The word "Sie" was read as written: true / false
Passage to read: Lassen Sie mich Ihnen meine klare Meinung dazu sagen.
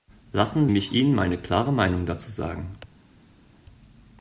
false